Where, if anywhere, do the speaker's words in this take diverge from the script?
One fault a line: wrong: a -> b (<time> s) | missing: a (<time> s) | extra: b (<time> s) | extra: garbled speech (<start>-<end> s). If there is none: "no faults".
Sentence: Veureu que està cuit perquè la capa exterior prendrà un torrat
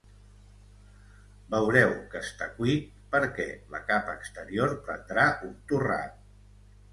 no faults